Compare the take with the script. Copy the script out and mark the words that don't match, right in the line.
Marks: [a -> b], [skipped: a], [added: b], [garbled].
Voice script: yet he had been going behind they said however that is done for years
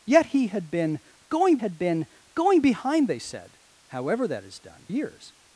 yet he had been going [added: had been going] behind they said however that is done [skipped: for] years